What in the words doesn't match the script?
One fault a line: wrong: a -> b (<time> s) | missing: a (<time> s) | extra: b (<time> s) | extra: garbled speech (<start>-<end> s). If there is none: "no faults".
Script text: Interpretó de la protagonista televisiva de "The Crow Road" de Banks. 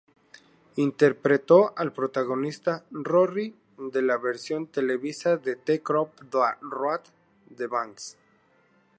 extra: al protagonista Rory (1.8 s)
wrong: protagonista -> versión (4.2 s)